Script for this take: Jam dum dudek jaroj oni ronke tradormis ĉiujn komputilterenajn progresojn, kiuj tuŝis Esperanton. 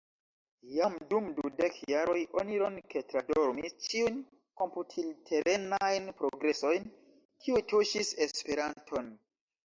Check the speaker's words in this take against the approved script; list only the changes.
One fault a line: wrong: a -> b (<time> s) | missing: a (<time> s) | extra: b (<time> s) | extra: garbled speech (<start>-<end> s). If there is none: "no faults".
no faults